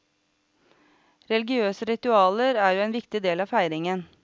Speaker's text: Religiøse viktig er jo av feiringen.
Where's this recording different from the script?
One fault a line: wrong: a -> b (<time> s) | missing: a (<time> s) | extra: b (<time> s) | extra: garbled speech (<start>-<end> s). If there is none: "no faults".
wrong: viktig -> ritualer (1.9 s)
extra: en viktig del (2.9 s)